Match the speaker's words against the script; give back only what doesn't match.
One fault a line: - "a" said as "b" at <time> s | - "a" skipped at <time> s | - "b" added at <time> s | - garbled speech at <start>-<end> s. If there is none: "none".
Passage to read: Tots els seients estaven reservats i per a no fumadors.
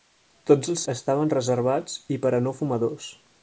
- "seients" skipped at 0.8 s